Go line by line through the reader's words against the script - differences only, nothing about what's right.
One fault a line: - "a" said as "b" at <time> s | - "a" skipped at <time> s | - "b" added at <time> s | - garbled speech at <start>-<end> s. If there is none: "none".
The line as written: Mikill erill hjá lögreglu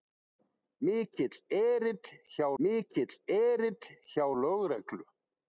- "mikill erill hjá" added at 2.6 s